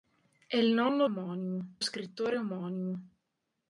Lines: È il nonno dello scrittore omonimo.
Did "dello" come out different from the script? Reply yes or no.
yes